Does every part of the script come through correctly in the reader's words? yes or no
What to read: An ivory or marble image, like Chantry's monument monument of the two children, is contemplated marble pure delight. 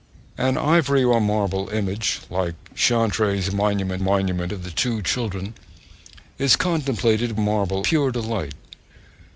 yes